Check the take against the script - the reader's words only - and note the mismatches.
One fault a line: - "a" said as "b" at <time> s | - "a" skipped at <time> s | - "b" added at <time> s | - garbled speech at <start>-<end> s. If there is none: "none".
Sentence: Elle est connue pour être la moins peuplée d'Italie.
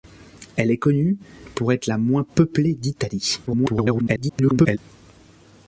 - garbled speech at 3.5-4.8 s